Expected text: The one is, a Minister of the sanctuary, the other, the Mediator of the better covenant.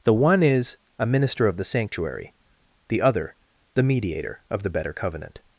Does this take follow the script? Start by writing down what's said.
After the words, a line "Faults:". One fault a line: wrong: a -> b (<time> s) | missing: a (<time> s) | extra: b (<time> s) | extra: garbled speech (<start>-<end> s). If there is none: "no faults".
The one is, a Minister of the sanctuary, the other, the Mediator of the better covenant.
Faults:
no faults